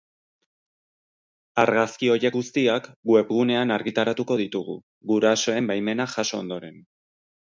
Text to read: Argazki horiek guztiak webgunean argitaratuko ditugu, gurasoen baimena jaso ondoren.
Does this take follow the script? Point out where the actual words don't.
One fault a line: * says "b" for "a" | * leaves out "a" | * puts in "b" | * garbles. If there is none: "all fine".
all fine